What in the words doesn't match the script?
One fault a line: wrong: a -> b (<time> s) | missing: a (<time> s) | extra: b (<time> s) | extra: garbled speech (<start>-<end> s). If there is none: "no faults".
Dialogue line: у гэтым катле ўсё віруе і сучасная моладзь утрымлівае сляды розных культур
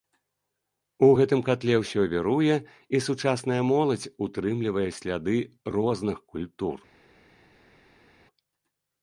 no faults